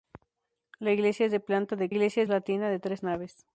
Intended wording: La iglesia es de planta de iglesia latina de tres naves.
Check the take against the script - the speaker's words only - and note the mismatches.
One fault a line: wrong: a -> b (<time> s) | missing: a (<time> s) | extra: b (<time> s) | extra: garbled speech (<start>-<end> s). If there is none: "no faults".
no faults